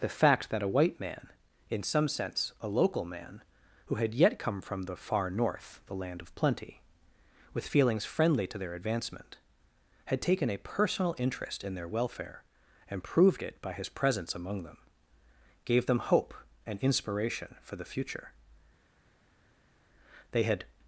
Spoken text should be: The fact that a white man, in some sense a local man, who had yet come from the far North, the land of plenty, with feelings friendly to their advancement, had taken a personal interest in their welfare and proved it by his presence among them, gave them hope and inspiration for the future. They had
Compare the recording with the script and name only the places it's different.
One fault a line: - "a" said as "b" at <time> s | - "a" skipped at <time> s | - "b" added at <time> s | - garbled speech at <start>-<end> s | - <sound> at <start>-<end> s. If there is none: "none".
none